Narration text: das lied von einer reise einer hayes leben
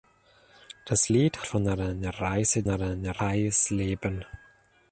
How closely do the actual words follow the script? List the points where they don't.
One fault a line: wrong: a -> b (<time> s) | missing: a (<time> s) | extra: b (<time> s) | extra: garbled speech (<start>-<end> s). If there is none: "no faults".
no faults